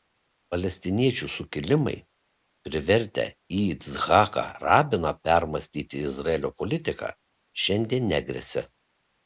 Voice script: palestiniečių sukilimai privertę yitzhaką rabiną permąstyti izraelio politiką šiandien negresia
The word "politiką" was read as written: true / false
true